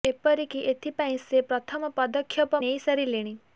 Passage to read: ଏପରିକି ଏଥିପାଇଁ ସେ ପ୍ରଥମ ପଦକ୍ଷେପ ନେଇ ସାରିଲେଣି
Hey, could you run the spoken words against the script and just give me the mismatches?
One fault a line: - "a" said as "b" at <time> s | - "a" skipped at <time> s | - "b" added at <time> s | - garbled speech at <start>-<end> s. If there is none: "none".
none